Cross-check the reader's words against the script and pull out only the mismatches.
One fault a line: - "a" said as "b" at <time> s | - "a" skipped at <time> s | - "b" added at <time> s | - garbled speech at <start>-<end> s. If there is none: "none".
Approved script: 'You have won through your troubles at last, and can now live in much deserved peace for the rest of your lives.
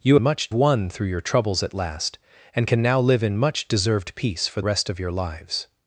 - "have" said as "much" at 0.2 s
- "the" skipped at 4.6 s